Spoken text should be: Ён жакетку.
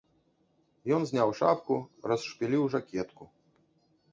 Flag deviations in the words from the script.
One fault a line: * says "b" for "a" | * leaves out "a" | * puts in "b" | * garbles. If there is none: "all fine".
* puts in "зняў шапку расшпіліў"